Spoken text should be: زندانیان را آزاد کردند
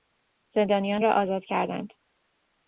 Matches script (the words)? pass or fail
pass